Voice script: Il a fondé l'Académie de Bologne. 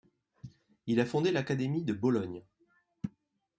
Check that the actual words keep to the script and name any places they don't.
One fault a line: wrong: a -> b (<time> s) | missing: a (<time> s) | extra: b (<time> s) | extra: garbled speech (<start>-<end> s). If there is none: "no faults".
no faults